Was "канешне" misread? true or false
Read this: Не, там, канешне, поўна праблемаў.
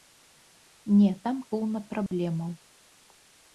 true